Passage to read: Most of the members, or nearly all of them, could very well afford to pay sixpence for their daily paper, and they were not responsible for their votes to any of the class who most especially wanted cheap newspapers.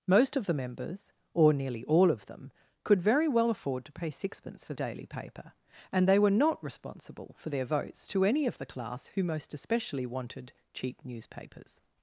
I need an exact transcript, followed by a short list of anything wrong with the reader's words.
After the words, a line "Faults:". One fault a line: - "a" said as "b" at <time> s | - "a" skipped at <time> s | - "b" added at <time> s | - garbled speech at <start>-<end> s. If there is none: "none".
Most of the members, or nearly all of them, could very well afford to pay sixpence for daily paper, and they were not responsible for their votes to any of the class who most especially wanted cheap newspapers.
Faults:
- "their" skipped at 4.7 s